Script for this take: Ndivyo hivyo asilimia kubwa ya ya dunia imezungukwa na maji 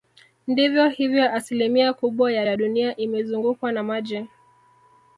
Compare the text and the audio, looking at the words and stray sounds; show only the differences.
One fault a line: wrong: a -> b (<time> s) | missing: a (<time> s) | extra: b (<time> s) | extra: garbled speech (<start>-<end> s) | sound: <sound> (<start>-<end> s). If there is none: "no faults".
no faults